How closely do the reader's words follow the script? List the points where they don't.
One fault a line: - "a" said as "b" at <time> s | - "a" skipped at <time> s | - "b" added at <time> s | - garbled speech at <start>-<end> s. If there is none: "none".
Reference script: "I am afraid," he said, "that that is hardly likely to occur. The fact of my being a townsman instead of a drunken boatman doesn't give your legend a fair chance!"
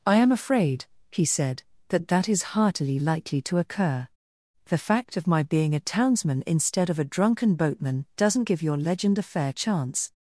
- "hardly" said as "heartily" at 2.4 s